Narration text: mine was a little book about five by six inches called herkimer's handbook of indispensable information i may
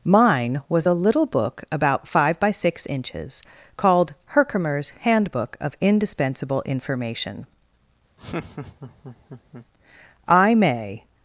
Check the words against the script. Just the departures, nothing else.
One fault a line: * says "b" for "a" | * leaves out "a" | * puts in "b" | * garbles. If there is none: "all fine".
all fine